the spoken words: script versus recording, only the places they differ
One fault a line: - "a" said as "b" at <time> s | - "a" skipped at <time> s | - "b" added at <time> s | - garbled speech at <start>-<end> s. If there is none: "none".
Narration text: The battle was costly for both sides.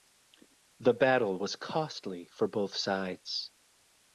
none